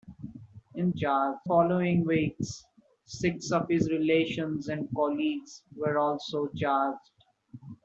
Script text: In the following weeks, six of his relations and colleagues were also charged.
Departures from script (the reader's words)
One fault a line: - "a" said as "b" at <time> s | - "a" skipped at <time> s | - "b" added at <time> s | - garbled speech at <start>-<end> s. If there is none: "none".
- "the" said as "charged" at 1.0 s